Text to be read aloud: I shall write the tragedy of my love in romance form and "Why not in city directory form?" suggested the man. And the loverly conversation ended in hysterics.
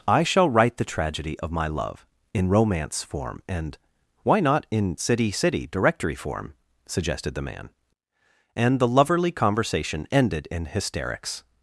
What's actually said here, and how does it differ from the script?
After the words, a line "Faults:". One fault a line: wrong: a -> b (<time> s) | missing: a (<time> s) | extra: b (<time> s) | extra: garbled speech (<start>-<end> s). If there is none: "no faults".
I shall write the tragedy of my love in romance form and "Why not in city city directory form?" suggested the man. And the loverly conversation ended in hysterics.
Faults:
extra: city (5.3 s)